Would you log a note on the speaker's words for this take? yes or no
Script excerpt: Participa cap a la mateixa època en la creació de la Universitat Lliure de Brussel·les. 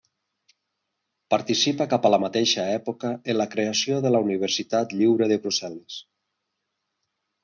no